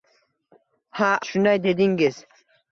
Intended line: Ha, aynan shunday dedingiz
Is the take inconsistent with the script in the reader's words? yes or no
yes